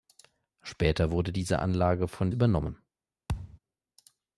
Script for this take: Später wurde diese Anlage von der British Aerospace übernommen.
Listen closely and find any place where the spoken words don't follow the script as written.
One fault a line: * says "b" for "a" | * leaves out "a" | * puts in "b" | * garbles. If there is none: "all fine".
* leaves out "der British Aerospace"